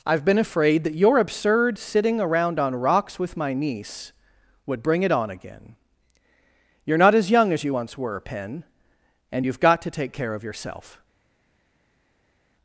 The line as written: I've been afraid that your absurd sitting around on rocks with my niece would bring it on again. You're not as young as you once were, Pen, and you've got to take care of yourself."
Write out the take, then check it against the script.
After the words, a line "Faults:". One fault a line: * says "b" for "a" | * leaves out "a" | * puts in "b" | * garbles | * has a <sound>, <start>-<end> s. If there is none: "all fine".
I've been afraid that your absurd sitting around on rocks with my niece would bring it on again. You're not as young as you once were, Pen, and you've got to take care of yourself."
Faults:
all fine